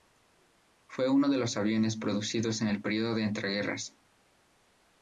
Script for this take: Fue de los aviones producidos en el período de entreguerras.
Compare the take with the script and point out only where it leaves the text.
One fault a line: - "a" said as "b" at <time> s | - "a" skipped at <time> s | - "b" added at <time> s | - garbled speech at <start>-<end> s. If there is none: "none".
- "uno" added at 1.1 s